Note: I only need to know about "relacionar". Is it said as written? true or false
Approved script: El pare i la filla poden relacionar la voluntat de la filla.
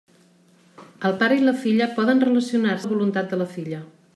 true